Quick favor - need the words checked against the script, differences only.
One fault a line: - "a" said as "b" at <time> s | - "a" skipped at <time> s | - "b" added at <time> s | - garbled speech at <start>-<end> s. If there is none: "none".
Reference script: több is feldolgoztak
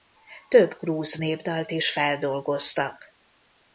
- "grúz népdalt" added at 0.8 s